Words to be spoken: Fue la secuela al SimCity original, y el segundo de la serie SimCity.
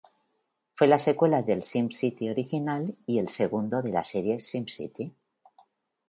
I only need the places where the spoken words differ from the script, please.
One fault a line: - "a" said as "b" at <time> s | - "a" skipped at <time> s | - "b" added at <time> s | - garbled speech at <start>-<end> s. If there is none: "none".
- "al" said as "del" at 1.4 s